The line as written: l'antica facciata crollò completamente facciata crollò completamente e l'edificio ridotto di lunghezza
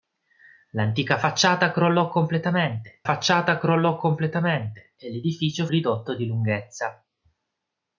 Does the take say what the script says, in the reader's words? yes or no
yes